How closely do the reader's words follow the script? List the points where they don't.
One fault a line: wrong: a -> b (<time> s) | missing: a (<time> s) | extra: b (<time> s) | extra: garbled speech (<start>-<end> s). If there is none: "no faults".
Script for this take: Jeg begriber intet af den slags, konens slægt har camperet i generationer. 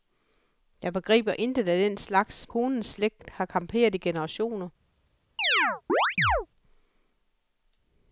no faults